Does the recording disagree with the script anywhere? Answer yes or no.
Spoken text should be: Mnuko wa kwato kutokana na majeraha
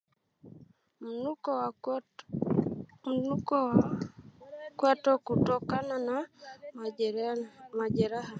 no